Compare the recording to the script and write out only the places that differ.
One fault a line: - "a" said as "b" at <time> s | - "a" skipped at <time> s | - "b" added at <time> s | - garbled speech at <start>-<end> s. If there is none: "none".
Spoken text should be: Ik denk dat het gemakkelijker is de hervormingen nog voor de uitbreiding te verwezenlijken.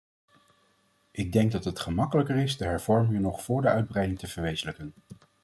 none